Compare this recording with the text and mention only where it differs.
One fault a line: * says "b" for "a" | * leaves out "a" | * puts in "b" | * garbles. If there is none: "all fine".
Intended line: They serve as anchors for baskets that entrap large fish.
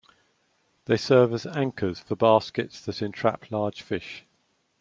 all fine